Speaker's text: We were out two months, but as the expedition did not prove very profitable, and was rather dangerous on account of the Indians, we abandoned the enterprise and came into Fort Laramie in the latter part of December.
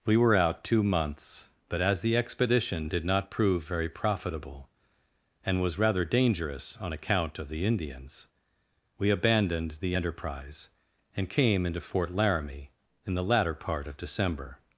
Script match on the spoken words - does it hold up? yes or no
yes